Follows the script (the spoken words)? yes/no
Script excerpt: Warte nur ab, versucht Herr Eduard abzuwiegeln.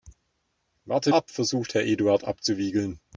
no